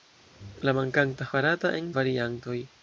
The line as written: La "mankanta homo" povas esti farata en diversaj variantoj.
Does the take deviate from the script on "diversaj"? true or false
true